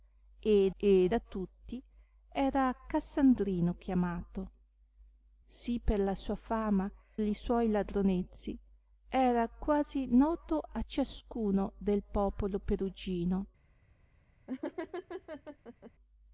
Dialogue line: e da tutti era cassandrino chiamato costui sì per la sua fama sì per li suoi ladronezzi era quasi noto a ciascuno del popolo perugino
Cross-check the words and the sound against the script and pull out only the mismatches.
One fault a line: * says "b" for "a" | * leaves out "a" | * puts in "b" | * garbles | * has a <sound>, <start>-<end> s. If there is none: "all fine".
* puts in "e"
* leaves out "costui"
* leaves out "sì per"
* has a laugh, 14.5-15.9 s